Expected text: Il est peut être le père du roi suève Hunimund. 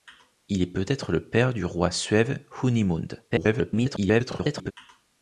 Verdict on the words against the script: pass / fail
fail